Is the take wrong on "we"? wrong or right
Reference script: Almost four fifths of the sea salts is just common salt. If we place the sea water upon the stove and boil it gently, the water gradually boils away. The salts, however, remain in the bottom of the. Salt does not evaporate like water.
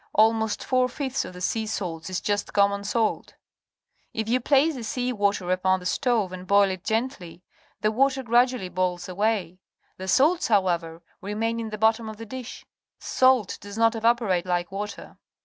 wrong